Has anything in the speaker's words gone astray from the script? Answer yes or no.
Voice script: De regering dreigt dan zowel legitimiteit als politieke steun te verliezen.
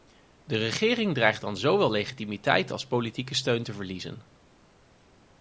no